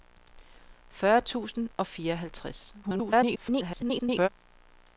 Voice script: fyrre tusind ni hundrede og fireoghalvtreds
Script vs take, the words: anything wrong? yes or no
yes